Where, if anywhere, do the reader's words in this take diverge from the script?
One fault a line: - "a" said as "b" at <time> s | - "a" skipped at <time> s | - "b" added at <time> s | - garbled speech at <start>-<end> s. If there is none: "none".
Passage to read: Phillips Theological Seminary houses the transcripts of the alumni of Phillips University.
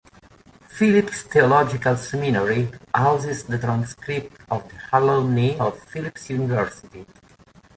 none